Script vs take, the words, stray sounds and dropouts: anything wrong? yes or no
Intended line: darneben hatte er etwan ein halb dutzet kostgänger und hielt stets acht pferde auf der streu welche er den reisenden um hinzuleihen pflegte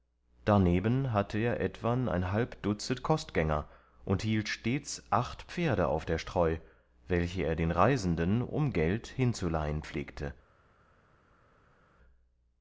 yes